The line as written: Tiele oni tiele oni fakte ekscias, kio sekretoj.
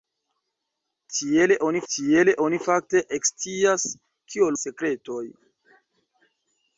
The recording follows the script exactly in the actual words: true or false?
true